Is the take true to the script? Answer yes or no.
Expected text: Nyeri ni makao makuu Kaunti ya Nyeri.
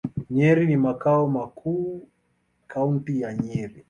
yes